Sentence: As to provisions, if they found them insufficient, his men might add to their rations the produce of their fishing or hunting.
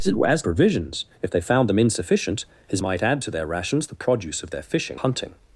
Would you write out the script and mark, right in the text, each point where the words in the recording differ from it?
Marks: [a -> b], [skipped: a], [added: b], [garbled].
As [skipped: to] provisions, if they found them insufficient, his [skipped: men] might add to their rations the produce of their fishing [skipped: or] hunting.